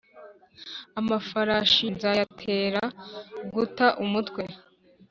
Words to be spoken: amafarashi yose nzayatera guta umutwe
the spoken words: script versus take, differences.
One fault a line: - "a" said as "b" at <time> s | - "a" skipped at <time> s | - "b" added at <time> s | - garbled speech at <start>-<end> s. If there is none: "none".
- "yose" skipped at 1.9 s